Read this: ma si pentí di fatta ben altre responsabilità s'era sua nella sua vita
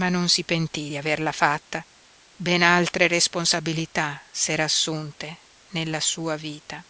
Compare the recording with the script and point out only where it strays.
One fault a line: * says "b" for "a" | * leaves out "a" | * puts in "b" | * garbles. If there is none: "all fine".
* puts in "non"
* puts in "averla"
* says "assunte" for "sua"